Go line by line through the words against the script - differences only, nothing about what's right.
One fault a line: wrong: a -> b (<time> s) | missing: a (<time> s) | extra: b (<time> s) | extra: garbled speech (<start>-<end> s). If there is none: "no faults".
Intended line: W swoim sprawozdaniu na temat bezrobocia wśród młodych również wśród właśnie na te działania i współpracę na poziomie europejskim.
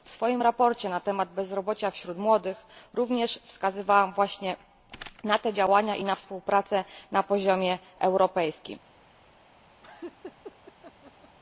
wrong: wśród -> wskazywałam (3.4 s)
extra: na (6.0 s)